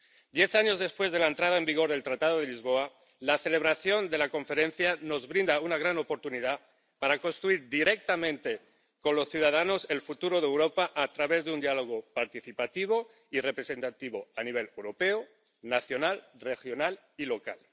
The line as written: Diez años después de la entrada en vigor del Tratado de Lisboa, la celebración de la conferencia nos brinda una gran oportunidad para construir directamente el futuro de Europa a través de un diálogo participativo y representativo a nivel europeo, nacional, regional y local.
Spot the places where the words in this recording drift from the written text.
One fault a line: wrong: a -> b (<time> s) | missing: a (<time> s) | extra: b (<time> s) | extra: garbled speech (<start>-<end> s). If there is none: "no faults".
extra: con los ciudadanos (9.0 s)